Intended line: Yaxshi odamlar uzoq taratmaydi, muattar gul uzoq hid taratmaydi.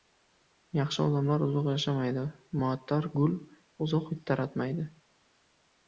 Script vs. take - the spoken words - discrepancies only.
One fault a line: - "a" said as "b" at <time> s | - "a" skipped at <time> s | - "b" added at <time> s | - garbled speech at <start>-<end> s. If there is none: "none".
- "taratmaydi" said as "yashamaydi" at 1.7 s